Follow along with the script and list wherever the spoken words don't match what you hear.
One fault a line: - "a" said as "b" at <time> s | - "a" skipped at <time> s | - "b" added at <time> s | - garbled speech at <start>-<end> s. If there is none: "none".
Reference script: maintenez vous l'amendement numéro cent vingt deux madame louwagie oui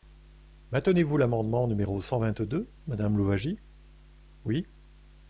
none